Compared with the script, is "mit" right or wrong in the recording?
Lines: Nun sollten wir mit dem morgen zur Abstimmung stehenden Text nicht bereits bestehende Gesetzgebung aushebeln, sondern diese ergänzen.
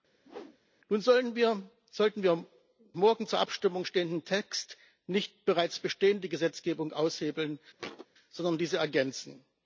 wrong